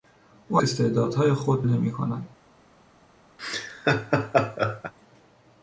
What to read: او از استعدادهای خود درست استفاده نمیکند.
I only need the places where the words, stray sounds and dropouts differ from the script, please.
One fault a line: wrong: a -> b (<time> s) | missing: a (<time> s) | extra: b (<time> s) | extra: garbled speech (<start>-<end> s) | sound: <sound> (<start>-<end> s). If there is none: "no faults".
missing: از (0.6 s)
missing: درست استفاده (1.6 s)
sound: laugh (3.4-4.9 s)